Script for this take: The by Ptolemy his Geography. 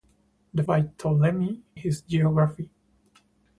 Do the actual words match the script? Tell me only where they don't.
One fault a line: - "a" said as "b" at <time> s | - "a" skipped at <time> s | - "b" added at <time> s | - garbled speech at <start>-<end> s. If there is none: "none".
none